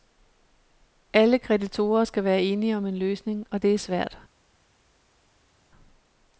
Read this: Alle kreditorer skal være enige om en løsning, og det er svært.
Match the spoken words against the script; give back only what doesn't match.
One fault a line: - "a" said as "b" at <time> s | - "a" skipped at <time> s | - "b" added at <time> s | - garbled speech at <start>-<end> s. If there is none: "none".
none